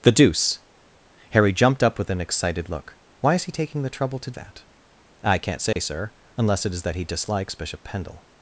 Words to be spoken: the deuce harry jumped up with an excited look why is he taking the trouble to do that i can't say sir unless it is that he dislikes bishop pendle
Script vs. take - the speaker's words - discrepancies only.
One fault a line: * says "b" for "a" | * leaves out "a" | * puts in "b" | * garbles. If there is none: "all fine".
* leaves out "do"